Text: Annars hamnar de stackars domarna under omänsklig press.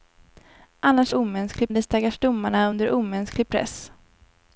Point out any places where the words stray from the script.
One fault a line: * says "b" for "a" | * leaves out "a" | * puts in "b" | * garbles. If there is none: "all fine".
* says "omänsklig" for "hamnar"